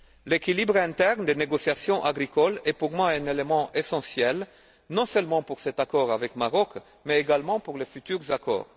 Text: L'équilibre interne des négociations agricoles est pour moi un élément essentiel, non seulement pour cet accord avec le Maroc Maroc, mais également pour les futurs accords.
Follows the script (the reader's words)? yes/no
no